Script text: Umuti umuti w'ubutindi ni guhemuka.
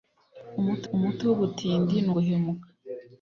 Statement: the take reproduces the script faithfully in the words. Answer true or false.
true